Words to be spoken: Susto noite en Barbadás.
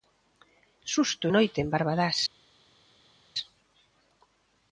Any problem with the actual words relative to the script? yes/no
no